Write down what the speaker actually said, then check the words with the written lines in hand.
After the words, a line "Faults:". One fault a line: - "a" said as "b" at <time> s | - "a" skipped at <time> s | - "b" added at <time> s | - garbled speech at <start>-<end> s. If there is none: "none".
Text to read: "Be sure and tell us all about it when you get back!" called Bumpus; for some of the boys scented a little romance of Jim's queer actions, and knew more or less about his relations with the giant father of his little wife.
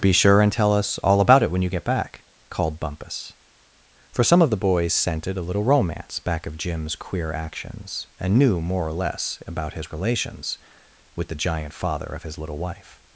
"Be sure and tell us all about it when you get back!" called Bumpus; for some of the boys scented a little romance back of Jim's queer actions, and knew more or less about his relations with the giant father of his little wife.
Faults:
- "back" added at 6.2 s